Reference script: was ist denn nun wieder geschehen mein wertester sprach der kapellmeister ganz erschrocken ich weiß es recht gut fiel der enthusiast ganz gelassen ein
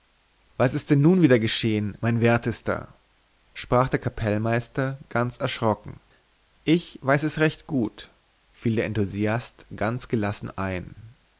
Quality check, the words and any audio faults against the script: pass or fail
pass